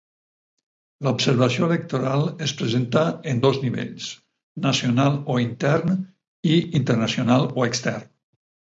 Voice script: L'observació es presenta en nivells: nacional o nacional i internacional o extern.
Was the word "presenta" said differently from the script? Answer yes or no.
no